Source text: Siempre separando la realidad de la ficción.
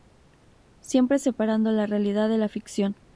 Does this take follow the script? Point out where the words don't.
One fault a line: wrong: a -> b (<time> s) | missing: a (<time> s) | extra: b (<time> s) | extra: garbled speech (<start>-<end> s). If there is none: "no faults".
no faults